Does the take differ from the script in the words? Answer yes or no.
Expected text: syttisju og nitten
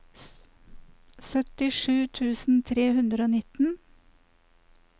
yes